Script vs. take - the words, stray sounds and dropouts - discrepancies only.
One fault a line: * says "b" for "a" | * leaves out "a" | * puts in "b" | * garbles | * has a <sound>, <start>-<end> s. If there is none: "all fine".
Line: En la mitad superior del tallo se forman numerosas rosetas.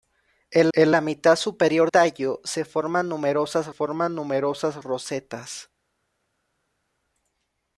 * puts in "en"
* leaves out "del"
* puts in "forman numerosas"